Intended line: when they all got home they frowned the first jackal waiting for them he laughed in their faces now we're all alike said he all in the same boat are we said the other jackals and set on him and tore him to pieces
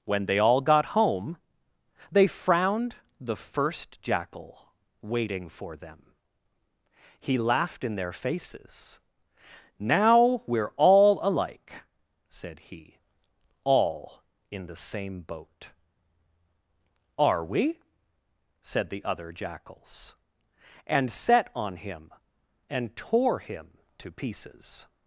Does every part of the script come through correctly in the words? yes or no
yes